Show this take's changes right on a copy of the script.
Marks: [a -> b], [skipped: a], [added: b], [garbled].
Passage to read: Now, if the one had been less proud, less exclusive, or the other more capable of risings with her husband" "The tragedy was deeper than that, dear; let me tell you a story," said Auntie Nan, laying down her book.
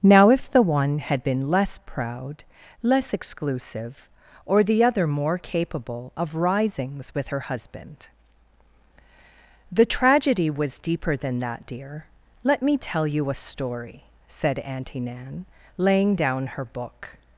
Now, if the one had been less proud, less exclusive, or the other more capable of risings with her husband" "The tragedy was deeper than that, dear; let me tell you a story," said Auntie Nan, laying down her book.